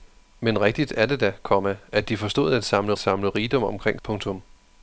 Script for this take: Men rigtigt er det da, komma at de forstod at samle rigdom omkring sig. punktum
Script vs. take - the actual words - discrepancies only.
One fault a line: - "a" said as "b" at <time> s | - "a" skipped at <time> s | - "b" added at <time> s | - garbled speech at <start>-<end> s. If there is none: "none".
- "samle" added at 3.0 s
- "sig" skipped at 4.0 s